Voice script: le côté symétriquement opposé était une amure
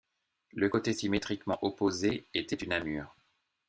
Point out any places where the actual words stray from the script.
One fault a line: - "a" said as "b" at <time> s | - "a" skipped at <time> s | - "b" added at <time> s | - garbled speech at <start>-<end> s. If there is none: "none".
none